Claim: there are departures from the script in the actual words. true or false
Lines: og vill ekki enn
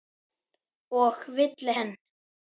true